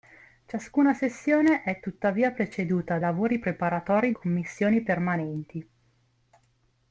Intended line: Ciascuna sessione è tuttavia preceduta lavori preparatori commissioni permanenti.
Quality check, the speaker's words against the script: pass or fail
pass